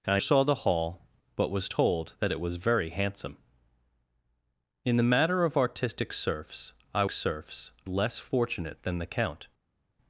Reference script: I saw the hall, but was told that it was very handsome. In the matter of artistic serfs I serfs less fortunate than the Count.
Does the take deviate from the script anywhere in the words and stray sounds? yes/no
no